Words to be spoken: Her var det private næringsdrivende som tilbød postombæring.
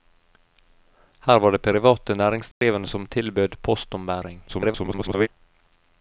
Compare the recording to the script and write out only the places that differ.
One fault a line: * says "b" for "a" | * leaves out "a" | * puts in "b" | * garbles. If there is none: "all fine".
* garbles